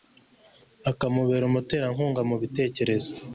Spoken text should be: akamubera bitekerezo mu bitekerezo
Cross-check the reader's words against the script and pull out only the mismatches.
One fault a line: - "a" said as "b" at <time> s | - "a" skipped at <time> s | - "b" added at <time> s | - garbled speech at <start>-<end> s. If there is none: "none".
- "bitekerezo" said as "umuterankunga" at 1.5 s